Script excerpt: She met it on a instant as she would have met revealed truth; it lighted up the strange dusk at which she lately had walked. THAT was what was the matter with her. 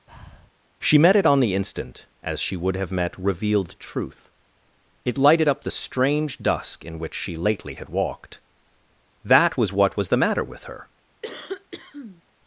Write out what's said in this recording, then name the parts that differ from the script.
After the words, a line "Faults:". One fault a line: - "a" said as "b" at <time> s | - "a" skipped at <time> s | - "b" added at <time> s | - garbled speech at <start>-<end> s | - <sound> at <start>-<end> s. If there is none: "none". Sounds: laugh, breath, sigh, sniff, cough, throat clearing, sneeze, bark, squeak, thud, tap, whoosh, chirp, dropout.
She met it on the instant as she would have met revealed truth; it lighted up the strange dusk in which she lately had walked. THAT was what was the matter with her.
Faults:
- breath at 0.1-0.5 s
- "a" said as "the" at 1.4 s
- "at" said as "in" at 6.8 s
- cough at 11.2-12.2 s